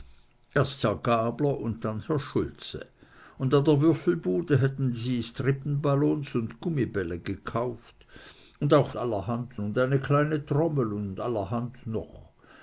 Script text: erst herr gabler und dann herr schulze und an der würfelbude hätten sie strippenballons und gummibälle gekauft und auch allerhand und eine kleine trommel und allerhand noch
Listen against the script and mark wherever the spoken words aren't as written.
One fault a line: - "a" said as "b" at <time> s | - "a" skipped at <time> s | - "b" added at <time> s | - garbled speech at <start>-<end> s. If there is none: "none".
none